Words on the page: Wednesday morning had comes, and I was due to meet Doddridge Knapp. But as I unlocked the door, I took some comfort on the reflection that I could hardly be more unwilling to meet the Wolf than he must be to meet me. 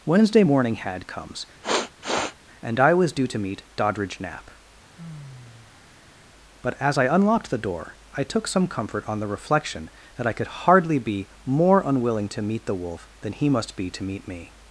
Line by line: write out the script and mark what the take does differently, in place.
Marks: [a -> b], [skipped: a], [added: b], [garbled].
Wednesday morning had comes, and I was due to meet Doddridge Knapp. But as I unlocked the door, I took some comfort on the reflection that I could hardly be more unwilling to meet the Wolf than he must be to meet me.